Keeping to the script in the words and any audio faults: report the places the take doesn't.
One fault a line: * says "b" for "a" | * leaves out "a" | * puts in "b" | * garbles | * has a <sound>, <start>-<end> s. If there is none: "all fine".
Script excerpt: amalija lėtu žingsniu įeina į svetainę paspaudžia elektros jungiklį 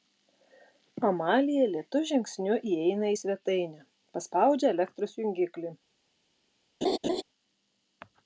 * has a laugh, 6.8-7.2 s